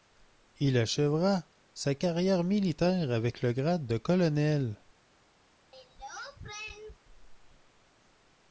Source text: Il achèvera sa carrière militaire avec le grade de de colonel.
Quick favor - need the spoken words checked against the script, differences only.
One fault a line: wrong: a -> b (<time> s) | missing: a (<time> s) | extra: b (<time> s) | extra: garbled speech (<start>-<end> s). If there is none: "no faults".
missing: de (4.0 s)